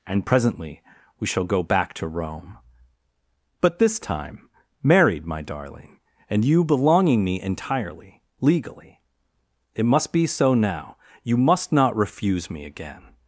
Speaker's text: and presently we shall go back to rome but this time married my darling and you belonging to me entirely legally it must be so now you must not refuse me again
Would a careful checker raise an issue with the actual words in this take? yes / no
yes